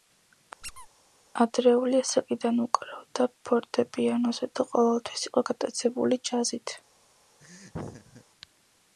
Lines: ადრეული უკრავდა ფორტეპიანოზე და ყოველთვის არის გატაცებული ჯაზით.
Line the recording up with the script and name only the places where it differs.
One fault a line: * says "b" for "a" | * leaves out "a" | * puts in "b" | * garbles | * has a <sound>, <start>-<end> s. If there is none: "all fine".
* has a squeak, 0.6-0.9 s
* puts in "ასაკიდან"
* says "იყო" for "არის"
* has a laugh, 7.4-8.2 s